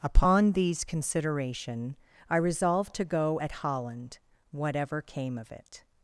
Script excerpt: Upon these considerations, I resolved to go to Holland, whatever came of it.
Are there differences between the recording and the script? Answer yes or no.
yes